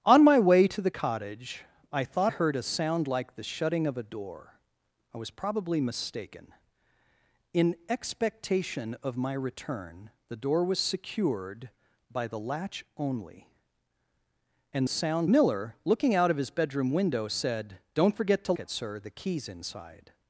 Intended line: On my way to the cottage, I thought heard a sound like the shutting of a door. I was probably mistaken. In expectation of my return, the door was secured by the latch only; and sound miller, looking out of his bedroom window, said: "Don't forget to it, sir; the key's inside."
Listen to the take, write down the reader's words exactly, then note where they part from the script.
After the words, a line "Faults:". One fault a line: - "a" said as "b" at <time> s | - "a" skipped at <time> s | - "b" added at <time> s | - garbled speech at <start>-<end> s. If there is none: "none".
On my way to the cottage, I thought heard a sound like the shutting of a door. I was probably mistaken. In expectation of my return, the door was secured by the latch only; and sound miller, looking out of his bedroom window, said: "Don't forget to it, sir; the key's inside."
Faults:
none